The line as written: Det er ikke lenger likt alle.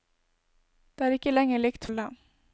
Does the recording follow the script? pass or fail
pass